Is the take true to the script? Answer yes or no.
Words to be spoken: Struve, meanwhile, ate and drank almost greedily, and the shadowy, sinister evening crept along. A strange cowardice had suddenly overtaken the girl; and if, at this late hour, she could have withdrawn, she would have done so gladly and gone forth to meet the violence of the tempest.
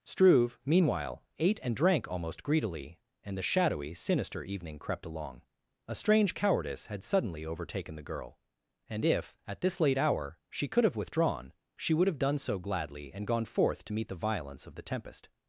yes